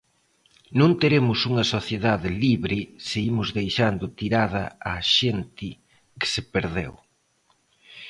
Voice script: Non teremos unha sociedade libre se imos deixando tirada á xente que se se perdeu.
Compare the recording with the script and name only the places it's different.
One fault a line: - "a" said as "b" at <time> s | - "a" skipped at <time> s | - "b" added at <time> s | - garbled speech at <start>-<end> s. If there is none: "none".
- "se" skipped at 6.4 s